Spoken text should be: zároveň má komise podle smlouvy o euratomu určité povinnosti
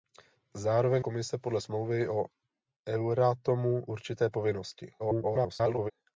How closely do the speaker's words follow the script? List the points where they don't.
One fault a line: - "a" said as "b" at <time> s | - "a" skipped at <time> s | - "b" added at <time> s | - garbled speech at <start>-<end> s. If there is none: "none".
- "má" skipped at 1.1 s
- garbled speech at 5.0-5.9 s